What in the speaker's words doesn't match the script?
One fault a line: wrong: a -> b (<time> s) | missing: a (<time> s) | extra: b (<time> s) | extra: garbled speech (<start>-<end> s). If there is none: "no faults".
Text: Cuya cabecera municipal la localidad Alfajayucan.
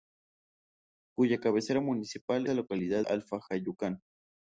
no faults